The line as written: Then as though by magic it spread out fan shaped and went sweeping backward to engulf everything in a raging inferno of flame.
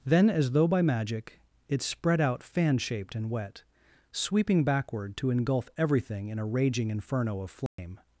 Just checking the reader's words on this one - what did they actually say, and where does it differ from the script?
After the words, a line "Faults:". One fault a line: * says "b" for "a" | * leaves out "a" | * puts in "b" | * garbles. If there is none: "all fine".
Then as though by magic it spread out fan shaped and wet sweeping backward to engulf everything in a raging inferno of flame.
Faults:
* says "wet" for "went"